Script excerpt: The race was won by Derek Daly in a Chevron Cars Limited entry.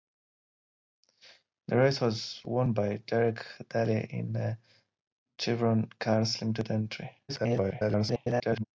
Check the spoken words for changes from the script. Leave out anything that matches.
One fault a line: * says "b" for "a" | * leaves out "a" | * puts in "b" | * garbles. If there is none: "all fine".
* garbles